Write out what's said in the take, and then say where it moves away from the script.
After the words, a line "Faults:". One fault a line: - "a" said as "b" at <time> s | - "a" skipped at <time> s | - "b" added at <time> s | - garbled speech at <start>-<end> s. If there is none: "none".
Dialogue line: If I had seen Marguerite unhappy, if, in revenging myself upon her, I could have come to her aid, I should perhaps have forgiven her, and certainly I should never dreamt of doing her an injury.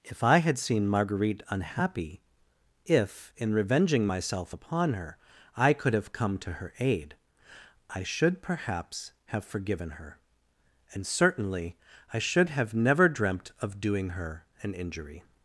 If I had seen Marguerite unhappy, if, in revenging myself upon her, I could have come to her aid, I should perhaps have forgiven her, and certainly I should have never dreamt of doing her an injury.
Faults:
- "have" added at 12.5 s